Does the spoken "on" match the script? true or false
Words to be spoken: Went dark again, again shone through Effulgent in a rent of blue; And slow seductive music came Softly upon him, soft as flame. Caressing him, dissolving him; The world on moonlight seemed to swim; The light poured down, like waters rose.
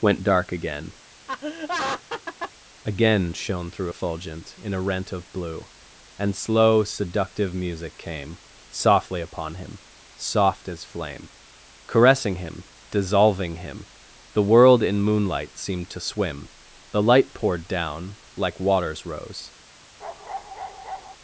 false